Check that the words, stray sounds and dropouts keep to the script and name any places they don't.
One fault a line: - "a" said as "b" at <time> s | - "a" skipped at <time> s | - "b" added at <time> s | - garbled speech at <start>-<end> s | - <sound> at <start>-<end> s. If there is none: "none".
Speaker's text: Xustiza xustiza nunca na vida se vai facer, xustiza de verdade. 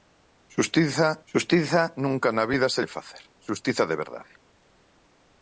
none